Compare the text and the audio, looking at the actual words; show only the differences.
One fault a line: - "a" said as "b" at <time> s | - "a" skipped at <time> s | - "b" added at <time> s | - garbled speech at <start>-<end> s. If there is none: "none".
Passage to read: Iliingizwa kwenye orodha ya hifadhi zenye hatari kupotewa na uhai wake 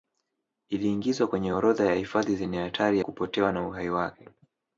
none